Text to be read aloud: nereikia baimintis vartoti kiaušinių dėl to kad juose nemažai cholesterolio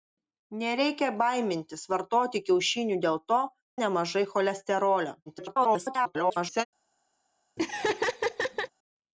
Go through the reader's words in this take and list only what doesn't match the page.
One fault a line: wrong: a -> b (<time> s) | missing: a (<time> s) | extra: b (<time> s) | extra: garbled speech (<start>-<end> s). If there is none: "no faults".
missing: kad juose (3.4 s)
extra: garbled speech (5.3-6.7 s)